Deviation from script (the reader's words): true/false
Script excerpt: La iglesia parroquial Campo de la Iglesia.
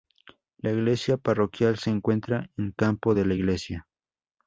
true